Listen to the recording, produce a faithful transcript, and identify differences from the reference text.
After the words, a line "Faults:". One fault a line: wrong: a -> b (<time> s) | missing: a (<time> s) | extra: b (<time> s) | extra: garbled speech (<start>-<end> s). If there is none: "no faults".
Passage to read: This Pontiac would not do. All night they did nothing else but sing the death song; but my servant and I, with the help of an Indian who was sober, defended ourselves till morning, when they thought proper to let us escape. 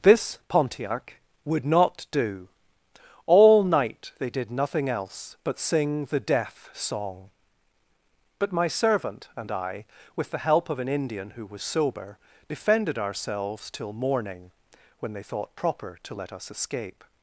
This Pontiac would not do. All night they did nothing else but sing the death song; but my servant and I, with the help of an Indian who was sober, defended ourselves till morning, when they thought proper to let us escape.
Faults:
no faults